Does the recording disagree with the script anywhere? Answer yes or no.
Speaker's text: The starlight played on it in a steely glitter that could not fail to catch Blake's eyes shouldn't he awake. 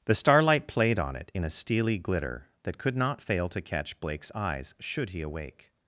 yes